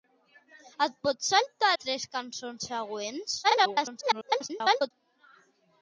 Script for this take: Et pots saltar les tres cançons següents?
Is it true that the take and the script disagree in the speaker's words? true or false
true